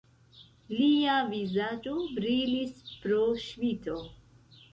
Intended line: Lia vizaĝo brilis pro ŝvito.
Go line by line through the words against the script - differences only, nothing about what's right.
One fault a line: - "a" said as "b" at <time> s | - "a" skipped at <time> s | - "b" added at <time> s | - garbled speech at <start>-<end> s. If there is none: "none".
none